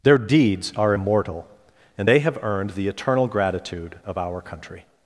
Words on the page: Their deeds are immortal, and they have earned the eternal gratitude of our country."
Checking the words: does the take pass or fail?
pass